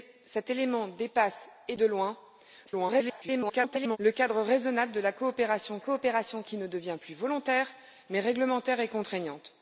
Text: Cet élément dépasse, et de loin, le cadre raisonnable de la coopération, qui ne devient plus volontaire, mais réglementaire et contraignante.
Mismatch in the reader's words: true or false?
true